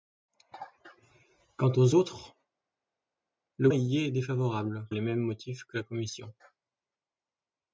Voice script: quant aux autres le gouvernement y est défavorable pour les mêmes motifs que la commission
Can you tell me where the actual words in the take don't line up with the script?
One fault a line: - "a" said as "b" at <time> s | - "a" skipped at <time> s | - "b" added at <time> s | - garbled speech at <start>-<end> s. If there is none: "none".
- "gouvernement" skipped at 3.7 s
- "pour" skipped at 4.8 s